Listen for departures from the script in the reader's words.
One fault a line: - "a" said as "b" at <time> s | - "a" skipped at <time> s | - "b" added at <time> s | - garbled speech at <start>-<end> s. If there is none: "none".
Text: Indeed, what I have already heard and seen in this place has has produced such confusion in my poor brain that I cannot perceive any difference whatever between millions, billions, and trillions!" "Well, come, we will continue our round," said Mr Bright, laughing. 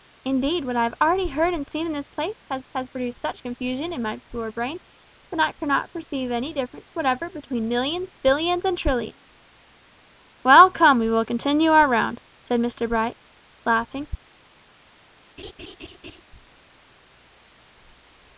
none